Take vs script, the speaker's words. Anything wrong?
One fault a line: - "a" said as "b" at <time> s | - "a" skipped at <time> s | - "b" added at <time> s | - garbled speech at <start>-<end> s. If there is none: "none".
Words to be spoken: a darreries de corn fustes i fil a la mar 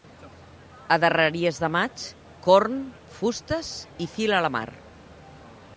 - "maig" added at 1.7 s